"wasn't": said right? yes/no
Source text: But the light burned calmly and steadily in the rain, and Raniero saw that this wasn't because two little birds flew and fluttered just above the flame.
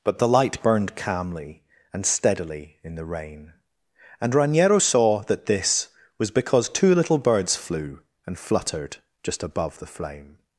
no